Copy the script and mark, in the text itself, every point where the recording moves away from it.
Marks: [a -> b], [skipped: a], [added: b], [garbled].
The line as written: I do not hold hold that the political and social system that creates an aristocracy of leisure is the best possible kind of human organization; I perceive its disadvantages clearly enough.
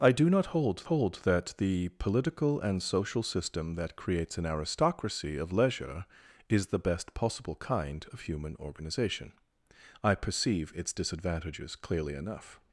I do not hold hold that the political and social system that creates an aristocracy of leisure is the best possible kind of human organization; I perceive its disadvantages clearly enough.